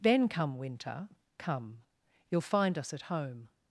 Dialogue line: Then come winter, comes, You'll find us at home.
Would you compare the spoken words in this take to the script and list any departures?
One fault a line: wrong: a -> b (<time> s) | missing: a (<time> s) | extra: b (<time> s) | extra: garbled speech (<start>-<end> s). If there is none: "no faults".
wrong: comes -> come (1.4 s)